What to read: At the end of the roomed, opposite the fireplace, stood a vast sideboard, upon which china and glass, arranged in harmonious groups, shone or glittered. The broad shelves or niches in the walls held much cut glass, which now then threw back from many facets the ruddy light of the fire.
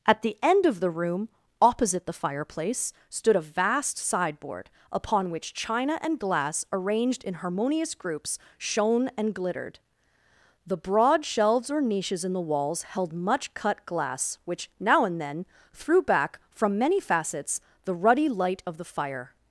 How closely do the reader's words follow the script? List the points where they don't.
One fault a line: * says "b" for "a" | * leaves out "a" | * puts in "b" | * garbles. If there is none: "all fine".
* says "room" for "roomed"
* says "and" for "or"
* puts in "and"